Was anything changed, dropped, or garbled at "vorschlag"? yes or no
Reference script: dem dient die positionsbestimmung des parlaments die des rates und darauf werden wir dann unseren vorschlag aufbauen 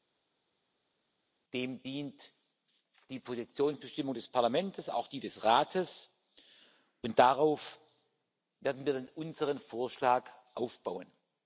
no